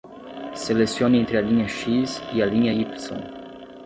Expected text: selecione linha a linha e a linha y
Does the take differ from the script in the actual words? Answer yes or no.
yes